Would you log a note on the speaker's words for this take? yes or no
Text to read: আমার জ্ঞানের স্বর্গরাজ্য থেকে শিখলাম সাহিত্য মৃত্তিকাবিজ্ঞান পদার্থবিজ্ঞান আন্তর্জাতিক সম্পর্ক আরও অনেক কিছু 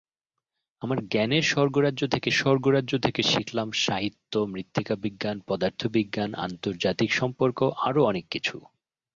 yes